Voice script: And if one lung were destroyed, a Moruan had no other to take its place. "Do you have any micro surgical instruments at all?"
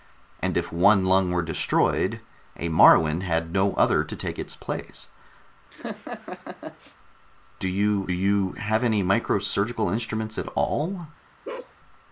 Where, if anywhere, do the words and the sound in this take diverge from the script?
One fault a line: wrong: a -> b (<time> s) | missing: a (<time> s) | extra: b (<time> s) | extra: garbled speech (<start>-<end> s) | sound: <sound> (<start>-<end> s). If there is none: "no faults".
sound: laugh (5.7-7.0 s)
extra: you (8.1 s)
sound: bark (11.4-11.7 s)